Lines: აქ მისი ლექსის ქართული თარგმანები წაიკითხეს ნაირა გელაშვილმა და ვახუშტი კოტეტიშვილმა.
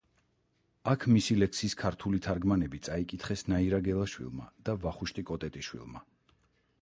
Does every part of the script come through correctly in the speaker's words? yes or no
yes